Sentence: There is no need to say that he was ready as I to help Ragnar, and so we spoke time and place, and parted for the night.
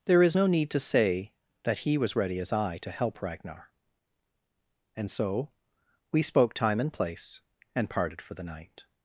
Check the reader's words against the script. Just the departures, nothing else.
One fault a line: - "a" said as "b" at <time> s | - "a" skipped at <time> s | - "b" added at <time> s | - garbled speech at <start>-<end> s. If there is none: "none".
none